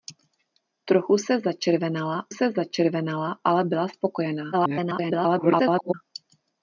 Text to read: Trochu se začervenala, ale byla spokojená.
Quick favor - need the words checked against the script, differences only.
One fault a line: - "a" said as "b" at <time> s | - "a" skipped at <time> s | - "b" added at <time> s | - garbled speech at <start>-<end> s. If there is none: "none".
- "se začervenala" added at 2.3 s
- garbled speech at 4.5-5.9 s